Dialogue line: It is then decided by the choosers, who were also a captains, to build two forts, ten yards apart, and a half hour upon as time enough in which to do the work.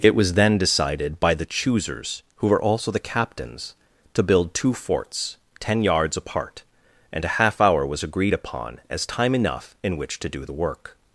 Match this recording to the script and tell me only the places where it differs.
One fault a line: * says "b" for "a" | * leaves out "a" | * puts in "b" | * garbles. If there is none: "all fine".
* says "was" for "is"
* says "the" for "a"
* puts in "was agreed"